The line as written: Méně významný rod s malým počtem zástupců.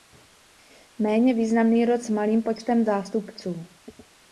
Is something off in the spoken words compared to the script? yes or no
no